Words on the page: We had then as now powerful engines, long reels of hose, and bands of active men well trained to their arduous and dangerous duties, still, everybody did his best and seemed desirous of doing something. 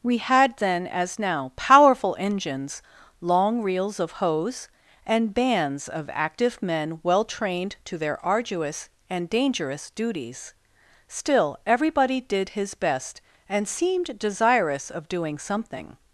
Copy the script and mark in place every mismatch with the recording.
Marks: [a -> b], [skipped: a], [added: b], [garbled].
We had then as now powerful engines, long reels of hose, and bands of active men well trained to their arduous and dangerous duties, still, everybody did his best and seemed desirous of doing something.